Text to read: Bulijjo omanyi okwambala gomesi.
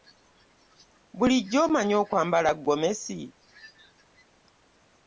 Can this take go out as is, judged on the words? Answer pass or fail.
pass